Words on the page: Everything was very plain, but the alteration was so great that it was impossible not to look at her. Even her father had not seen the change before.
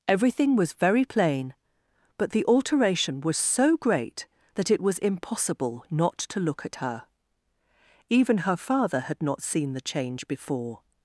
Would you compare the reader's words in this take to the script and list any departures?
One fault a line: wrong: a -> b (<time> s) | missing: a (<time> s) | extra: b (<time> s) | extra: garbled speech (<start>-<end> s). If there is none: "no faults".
no faults